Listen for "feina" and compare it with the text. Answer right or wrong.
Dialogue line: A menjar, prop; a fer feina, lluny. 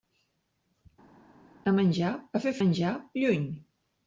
wrong